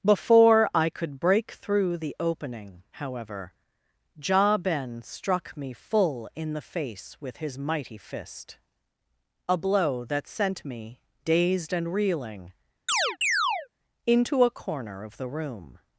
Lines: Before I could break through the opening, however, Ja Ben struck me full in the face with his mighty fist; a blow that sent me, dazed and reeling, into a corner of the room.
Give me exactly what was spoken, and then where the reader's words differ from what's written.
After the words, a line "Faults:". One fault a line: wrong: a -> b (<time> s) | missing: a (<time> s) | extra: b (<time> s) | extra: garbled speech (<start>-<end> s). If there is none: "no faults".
Before I could break through the opening, however, Ja Ben struck me full in the face with his mighty fist; a blow that sent me, dazed and reeling, into a corner of the room.
Faults:
no faults